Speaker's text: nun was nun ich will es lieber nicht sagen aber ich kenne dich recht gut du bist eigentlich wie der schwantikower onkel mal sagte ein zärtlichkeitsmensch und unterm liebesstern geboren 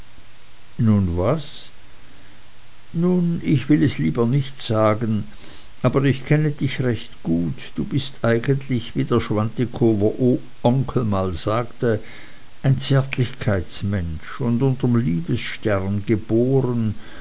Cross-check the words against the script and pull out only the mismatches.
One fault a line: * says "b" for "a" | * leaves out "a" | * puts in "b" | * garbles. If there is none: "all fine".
all fine